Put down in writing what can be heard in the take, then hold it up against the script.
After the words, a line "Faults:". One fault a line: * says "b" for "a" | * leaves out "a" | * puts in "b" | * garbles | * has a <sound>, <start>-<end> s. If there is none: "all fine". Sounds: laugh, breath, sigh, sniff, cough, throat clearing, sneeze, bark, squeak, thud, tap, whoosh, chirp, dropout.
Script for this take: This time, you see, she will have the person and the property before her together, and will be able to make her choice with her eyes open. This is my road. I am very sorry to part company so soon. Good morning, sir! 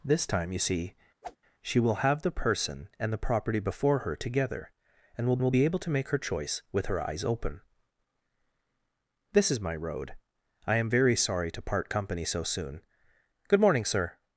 This time, you see, she will have the person and the property before her together, and will will be able to make her choice with her eyes open. This is my road. I am very sorry to part company so soon. Good morning, sir!
Faults:
* has a whoosh, 1.2-1.4 s
* puts in "will"